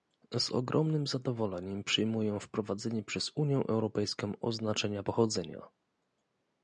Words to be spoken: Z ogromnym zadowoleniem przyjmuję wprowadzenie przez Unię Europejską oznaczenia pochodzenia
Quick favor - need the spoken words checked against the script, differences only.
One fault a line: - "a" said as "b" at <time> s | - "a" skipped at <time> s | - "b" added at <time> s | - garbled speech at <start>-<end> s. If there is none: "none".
none